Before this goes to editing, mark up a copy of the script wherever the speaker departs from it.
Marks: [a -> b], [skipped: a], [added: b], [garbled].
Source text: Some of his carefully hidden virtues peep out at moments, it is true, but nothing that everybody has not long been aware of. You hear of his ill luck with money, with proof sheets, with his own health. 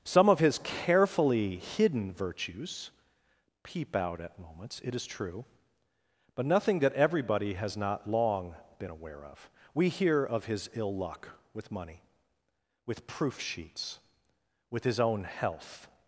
Some of his carefully hidden virtues peep out at moments, it is true, but nothing that everybody has not long been aware of. [You -> We] hear of his ill luck with money, with proof sheets, with his own health.